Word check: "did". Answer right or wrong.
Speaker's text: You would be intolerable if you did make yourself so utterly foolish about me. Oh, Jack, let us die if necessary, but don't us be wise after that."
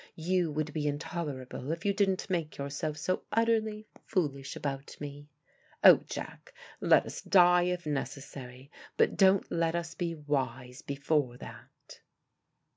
wrong